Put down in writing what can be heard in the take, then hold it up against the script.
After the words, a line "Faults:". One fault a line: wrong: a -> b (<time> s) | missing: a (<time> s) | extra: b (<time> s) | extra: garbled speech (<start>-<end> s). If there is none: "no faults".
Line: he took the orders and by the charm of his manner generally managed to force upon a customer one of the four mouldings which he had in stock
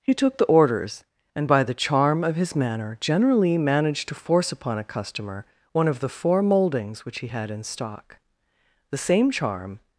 he took the orders and by the charm of his manner generally managed to force upon a customer one of the four mouldings which he had in stock the same charm
Faults:
extra: the same charm (8.9 s)